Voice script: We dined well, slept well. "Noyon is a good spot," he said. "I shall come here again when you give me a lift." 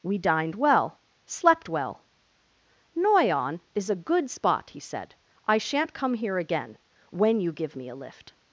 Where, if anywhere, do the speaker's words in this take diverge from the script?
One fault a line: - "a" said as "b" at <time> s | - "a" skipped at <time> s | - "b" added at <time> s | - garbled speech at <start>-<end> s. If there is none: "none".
- "shall" said as "shan't" at 5.6 s